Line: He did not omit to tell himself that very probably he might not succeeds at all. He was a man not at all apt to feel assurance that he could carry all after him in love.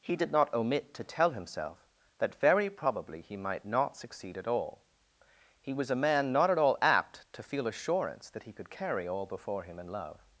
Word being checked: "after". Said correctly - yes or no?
no